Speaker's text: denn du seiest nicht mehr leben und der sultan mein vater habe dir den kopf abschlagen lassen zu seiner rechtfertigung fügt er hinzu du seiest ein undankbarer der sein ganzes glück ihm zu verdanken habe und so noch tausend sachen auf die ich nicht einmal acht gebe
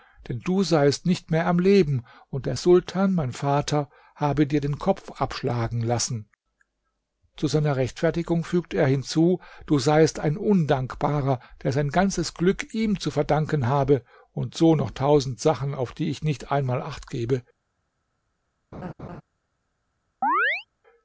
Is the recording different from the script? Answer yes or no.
yes